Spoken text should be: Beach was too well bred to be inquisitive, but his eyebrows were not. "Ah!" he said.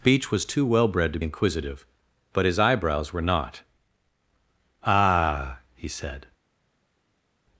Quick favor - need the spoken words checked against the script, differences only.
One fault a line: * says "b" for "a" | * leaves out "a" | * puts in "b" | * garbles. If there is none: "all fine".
* leaves out "be"